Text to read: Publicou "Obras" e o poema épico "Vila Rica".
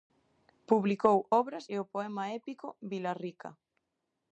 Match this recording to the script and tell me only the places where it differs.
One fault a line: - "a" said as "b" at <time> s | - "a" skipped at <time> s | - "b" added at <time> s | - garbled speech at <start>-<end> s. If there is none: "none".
none